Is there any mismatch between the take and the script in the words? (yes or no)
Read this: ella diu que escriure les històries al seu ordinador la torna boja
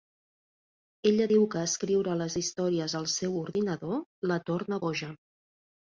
no